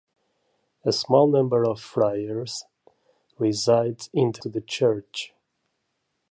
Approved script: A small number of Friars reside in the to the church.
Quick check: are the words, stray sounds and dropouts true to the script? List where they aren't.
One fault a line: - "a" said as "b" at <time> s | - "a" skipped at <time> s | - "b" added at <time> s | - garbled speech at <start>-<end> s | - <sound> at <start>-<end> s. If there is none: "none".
none